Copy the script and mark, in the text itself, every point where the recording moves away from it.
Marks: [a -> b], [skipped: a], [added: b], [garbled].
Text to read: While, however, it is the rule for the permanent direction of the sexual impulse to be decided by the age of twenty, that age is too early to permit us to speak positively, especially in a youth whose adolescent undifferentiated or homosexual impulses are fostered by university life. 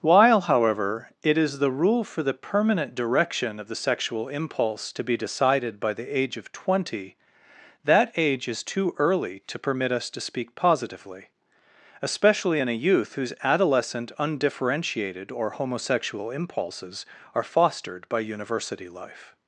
While, however, it is the rule for the permanent direction of the sexual impulse to be decided by the age of twenty, that age is too early to permit us to speak positively, especially in a youth whose adolescent undifferentiated or homosexual impulses are fostered by university life.